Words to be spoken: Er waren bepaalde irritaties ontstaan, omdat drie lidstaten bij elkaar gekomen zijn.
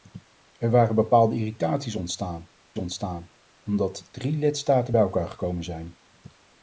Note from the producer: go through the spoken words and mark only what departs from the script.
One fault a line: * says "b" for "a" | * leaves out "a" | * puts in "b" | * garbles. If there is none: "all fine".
* puts in "ontstaan"